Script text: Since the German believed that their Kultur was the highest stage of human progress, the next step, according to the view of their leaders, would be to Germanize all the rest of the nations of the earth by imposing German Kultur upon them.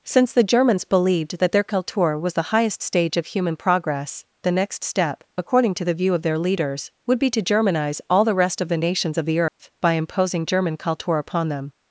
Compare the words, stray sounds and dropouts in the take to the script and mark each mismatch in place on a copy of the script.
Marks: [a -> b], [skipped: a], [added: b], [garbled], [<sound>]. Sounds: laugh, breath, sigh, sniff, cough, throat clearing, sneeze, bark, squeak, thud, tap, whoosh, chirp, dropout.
Since the [German -> Germans] believed that their Kultur was the highest stage of human progress, the next step, according to the view of their leaders, would be to Germanize all the rest of the nations of the earth [dropout] by imposing German Kultur upon them.